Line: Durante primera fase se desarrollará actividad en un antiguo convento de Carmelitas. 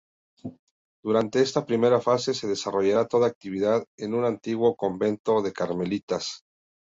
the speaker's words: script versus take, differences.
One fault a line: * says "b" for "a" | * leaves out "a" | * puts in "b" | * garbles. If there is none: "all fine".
* puts in "esta"
* puts in "toda"